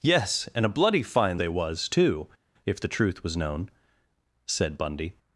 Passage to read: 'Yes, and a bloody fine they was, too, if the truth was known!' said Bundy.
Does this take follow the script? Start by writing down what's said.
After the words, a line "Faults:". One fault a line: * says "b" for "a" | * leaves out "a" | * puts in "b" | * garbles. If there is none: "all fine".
'Yes, and a bloody fine they was, too, if the truth was known!' said Bundy.
Faults:
all fine